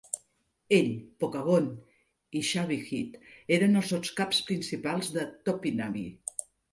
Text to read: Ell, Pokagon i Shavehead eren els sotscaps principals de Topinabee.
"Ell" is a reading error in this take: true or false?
false